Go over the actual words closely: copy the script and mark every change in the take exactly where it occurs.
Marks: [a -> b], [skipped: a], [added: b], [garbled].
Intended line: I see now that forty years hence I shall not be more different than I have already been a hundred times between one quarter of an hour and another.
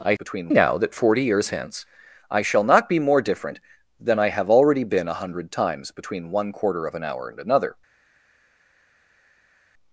I [see -> between] now that forty years hence I shall not be more different than I have already been a hundred times between one quarter of an hour and another.